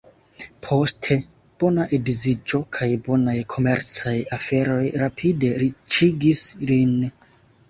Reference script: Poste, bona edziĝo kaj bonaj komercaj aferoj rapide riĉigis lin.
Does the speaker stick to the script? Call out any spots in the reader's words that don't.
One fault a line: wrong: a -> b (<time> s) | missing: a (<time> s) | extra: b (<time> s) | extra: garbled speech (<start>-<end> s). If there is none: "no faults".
no faults